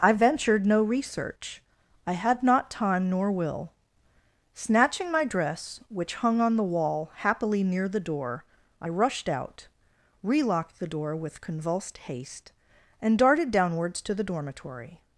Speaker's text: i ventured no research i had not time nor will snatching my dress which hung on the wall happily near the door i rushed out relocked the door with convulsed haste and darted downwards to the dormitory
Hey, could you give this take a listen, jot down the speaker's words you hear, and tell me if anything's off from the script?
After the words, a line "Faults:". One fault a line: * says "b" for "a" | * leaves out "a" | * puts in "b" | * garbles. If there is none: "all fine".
i ventured no research i had not time nor will snatching my dress which hung on the wall happily near the door i rushed out relocked the door with convulsed haste and darted downwards to the dormitory
Faults:
all fine